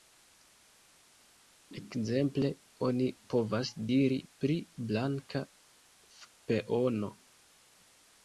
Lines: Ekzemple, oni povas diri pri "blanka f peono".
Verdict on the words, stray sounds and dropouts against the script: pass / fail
pass